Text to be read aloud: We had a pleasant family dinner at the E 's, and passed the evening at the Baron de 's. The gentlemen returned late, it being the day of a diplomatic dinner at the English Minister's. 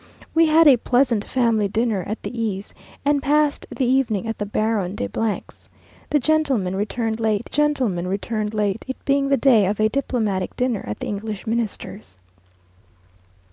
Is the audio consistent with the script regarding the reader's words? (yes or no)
no